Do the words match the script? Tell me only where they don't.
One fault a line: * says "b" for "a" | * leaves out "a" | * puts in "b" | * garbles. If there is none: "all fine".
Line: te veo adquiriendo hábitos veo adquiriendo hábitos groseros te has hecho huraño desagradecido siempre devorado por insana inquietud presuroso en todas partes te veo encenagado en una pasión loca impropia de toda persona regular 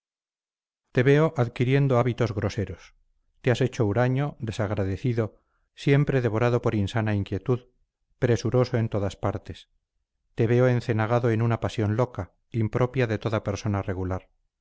* leaves out "veo adquiriendo hábitos"